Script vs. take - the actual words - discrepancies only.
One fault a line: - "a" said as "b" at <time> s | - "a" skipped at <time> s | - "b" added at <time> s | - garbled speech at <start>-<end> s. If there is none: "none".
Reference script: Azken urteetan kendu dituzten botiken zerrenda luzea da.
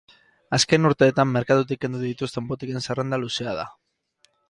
- "merkatutik" added at 1.4 s